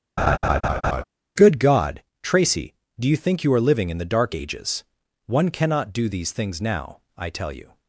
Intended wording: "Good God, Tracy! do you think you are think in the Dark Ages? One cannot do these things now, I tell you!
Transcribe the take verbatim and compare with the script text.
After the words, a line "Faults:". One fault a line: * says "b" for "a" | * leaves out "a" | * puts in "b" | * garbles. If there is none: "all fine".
"Good God, Tracy! do you think you are living in the Dark Ages? One cannot do these things now, I tell you!
Faults:
* says "living" for "think"